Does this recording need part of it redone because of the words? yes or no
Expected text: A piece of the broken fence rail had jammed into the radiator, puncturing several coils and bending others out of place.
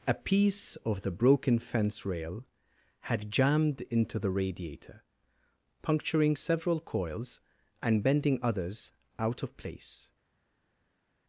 no